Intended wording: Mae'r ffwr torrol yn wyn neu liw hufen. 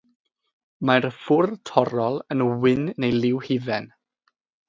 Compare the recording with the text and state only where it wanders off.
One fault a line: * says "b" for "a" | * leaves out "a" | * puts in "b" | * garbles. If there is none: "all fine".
all fine